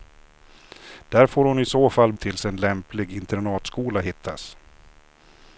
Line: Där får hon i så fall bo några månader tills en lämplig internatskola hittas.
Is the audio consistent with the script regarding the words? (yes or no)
no